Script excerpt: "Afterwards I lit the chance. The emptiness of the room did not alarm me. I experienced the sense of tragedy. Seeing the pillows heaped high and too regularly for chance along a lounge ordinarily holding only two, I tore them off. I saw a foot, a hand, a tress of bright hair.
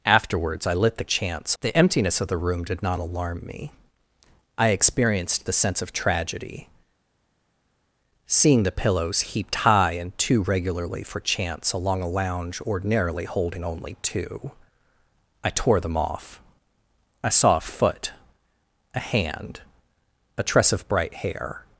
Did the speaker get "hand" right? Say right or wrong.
right